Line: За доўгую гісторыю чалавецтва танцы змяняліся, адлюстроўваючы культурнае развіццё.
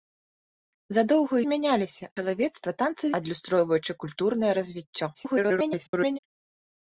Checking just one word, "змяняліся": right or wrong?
wrong